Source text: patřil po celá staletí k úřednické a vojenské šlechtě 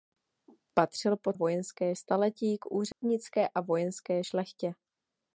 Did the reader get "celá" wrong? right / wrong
wrong